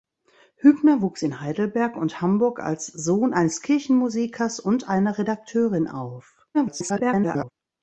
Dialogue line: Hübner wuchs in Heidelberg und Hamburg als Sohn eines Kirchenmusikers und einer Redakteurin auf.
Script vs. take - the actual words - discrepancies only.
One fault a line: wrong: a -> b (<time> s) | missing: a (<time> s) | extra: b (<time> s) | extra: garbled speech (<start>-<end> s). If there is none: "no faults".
extra: garbled speech (6.5-7.5 s)